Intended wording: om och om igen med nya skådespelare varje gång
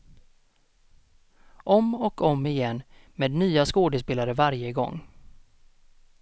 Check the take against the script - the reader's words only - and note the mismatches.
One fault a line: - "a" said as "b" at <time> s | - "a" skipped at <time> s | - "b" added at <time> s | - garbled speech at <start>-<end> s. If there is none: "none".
none